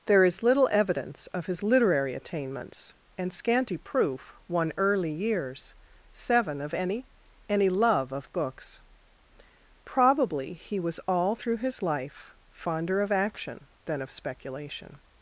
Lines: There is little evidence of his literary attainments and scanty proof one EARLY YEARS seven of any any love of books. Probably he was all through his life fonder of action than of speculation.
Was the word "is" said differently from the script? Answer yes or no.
no